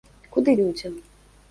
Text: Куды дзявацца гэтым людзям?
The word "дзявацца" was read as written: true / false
false